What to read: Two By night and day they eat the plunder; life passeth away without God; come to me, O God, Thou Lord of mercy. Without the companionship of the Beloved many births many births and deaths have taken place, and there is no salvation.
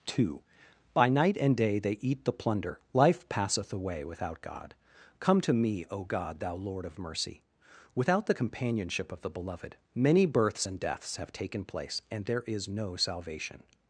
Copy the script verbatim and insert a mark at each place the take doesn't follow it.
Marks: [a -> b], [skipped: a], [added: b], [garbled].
Two By night and day they eat the plunder; life passeth away without God; come to me, O God, Thou Lord of mercy. Without the companionship of the Beloved many births [skipped: many births] and deaths have taken place, and there is no salvation.